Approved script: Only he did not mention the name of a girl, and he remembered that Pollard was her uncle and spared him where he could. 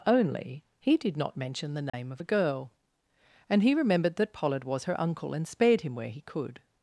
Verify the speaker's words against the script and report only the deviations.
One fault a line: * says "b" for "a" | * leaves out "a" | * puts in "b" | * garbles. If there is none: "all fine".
all fine